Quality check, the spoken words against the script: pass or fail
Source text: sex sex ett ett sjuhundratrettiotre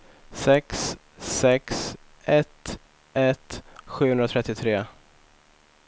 pass